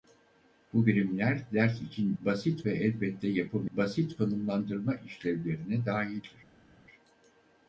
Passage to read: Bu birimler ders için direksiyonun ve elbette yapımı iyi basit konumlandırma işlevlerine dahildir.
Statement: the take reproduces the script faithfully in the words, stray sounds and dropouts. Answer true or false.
false